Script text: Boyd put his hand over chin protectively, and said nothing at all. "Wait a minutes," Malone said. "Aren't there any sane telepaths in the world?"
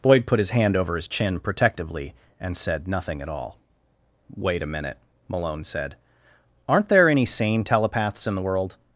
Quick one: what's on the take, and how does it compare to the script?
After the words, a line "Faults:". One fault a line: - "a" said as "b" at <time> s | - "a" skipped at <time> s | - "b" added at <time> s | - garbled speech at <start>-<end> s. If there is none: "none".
Boyd put his hand over his chin protectively, and said nothing at all. "Wait a minute," Malone said. "Aren't there any sane telepaths in the world?"
Faults:
- "his" added at 0.9 s
- "minutes" said as "minute" at 4.7 s